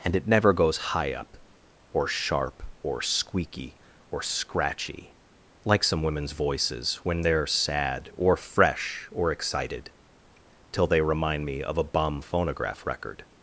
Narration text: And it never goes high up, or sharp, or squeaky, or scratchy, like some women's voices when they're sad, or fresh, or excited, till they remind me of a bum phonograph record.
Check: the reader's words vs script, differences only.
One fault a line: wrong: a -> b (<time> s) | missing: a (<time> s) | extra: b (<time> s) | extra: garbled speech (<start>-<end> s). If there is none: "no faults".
no faults